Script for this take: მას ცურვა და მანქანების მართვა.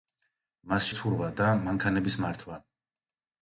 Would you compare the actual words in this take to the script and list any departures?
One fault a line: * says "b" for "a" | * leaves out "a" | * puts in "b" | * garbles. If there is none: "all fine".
all fine